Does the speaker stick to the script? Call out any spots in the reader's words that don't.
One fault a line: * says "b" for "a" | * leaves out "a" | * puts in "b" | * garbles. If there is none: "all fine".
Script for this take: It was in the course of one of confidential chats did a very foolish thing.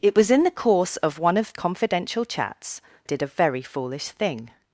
all fine